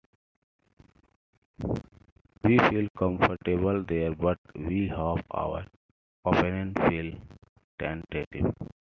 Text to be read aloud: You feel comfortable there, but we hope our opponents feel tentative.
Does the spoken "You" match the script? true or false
false